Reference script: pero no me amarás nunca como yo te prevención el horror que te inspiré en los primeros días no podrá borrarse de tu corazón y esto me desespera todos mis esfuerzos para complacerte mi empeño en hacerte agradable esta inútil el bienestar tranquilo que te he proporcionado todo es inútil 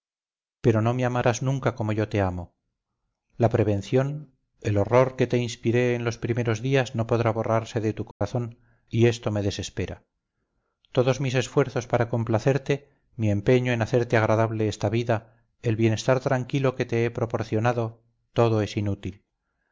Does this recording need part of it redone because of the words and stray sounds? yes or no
yes